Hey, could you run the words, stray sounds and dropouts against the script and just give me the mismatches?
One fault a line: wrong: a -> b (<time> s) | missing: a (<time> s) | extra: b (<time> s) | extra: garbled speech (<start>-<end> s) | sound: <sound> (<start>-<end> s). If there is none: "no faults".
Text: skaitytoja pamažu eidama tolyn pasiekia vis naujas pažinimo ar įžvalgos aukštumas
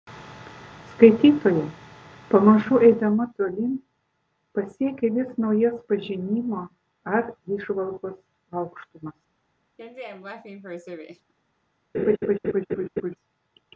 sound: laugh (9.8-11.3 s)
sound: laugh (11.9-13.2 s)